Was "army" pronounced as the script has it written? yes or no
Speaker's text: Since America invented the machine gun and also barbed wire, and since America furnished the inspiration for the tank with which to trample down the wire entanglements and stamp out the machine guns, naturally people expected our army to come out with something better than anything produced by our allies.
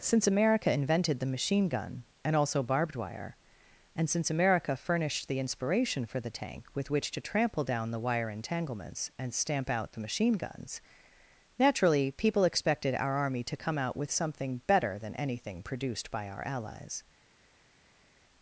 yes